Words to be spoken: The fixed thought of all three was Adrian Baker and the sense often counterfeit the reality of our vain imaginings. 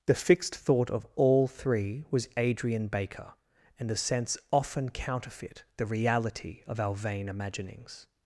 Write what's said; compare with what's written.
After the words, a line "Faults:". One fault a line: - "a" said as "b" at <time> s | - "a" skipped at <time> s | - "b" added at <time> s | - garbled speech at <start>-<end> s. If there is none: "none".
The fixed thought of all three was Adrian Baker and the sense often counterfeit the reality of our vain imaginings.
Faults:
none